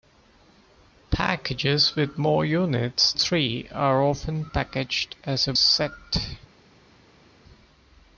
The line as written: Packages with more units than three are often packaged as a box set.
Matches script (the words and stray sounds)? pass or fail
fail